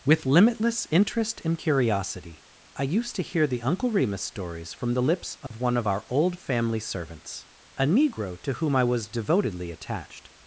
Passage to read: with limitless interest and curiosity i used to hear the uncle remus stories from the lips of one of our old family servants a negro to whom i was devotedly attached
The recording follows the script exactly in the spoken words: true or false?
true